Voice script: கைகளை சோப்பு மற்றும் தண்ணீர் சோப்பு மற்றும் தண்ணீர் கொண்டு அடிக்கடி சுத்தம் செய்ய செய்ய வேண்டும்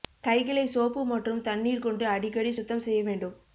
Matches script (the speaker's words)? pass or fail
fail